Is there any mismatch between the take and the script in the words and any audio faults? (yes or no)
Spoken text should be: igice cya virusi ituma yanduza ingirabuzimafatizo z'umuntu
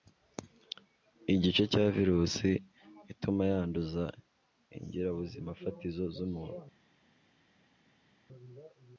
no